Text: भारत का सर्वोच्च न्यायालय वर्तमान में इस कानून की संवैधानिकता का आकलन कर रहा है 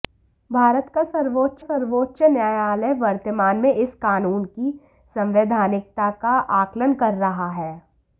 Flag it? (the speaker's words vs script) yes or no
yes